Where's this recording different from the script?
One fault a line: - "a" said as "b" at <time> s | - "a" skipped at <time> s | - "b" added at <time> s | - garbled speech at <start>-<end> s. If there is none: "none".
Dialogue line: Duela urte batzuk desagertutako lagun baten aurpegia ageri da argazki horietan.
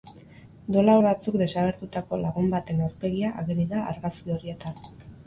- "urte" skipped at 0.9 s